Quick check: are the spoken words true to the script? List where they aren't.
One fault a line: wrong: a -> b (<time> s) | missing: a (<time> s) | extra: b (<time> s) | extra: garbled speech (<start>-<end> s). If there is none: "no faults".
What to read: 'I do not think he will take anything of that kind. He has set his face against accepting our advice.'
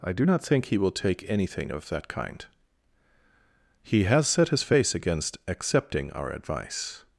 no faults